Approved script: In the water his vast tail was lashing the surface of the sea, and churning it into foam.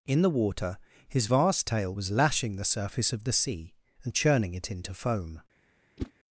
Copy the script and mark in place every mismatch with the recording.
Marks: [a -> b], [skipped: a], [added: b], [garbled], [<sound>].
In the water his vast tail was lashing the surface of the sea, and churning it into foam. [whoosh]